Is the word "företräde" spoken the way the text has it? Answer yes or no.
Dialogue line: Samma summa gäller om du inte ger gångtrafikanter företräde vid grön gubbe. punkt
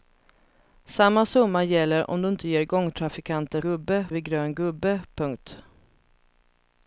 no